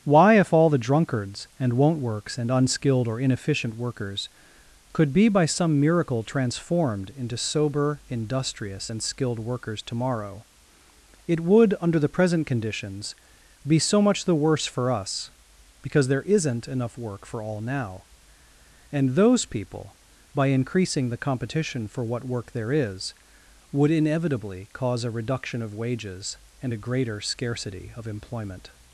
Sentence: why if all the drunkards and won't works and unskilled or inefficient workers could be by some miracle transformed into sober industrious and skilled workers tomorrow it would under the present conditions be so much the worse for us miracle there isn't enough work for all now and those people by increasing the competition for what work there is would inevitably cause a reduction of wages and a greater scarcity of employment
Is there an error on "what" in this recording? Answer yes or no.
no